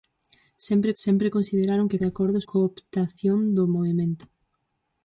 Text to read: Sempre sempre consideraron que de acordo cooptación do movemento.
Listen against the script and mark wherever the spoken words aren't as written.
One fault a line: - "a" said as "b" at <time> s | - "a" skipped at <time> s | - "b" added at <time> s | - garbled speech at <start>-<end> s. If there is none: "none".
none